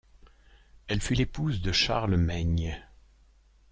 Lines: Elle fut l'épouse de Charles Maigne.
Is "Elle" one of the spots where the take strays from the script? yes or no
no